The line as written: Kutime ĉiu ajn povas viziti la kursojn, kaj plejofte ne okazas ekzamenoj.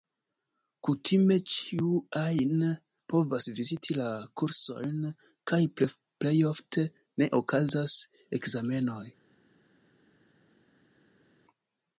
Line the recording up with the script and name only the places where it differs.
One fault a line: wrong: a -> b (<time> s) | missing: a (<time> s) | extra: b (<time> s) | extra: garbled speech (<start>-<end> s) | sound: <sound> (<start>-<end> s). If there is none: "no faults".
no faults